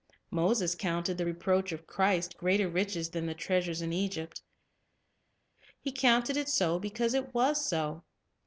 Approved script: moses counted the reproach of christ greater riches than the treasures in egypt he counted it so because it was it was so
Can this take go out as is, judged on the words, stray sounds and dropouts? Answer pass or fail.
fail